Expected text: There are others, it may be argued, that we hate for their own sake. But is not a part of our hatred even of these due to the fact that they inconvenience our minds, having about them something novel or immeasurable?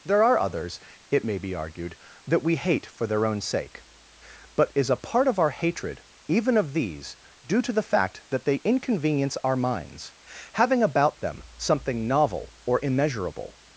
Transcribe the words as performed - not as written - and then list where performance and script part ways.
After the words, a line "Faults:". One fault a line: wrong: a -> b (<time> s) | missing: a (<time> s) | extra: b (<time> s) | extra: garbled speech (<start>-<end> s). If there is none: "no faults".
There are others, it may be argued, that we hate for their own sake. But is a part of our hatred even of these due to the fact that they inconvenience our minds, having about them something novel or immeasurable?
Faults:
missing: not (4.9 s)